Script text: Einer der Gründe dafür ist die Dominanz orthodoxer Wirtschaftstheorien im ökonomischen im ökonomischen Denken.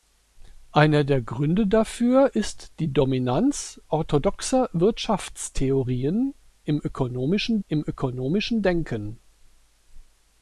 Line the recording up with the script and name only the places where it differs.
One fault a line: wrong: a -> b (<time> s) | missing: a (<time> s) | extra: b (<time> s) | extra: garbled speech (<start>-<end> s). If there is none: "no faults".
no faults